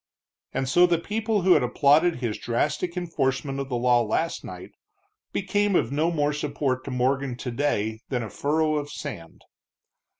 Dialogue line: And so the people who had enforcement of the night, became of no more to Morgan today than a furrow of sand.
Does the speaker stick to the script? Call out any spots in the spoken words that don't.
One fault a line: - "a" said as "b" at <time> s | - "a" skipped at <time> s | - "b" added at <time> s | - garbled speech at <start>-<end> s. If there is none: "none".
- "applauded his drastic" added at 1.6 s
- "law last" added at 3.8 s
- "support" added at 6.3 s